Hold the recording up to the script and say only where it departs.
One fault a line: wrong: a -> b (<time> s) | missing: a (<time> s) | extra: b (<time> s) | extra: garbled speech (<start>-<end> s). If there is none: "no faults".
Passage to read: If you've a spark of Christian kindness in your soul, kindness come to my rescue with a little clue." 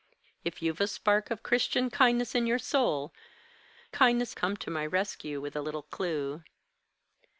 no faults